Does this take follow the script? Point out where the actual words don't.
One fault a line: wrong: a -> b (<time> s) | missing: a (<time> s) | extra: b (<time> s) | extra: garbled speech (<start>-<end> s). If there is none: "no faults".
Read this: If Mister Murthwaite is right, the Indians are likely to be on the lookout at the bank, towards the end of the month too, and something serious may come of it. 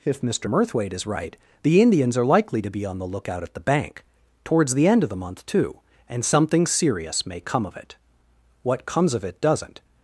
extra: What comes of it doesn't (8.6 s)